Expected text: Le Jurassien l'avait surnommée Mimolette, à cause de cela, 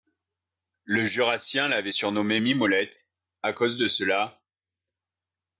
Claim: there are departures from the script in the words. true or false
false